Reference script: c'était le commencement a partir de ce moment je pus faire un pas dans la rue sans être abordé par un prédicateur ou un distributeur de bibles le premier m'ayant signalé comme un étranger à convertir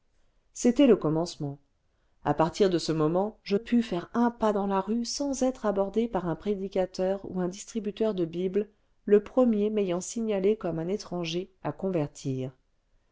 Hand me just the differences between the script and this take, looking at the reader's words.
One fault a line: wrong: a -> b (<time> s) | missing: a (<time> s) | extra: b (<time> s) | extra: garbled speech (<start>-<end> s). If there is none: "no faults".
no faults